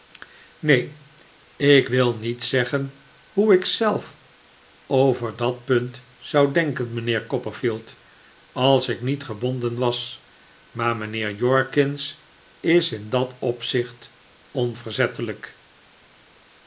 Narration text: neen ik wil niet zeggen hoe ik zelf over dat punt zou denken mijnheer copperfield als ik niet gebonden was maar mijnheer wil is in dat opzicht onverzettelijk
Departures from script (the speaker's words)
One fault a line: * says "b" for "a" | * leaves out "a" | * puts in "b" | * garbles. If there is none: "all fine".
* says "jorkins" for "wil"